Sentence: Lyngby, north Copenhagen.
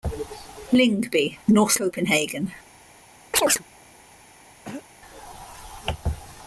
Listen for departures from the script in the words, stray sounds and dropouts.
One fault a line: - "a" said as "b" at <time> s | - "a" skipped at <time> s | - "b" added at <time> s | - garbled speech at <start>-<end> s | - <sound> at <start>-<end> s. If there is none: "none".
- chirp at 3.3-3.6 s
- throat clearing at 4.6-4.8 s